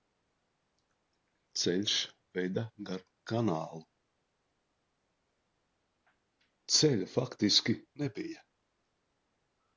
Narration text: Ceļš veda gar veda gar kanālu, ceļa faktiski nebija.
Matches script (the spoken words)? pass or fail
fail